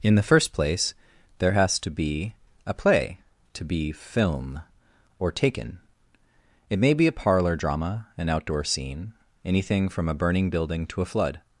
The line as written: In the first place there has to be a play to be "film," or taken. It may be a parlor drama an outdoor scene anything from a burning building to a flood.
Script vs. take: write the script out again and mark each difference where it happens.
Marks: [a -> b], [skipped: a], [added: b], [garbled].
In the first place there has to be a play to be "film," or taken. It may be a parlor drama an outdoor scene anything from a burning building to a flood.